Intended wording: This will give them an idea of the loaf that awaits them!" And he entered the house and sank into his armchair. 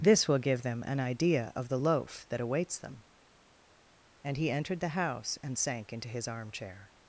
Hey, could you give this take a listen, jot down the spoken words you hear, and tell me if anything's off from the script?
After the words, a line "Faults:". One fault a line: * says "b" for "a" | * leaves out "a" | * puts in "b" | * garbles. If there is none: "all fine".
This will give them an idea of the loaf that awaits them!" And he entered the house and sank into his armchair.
Faults:
all fine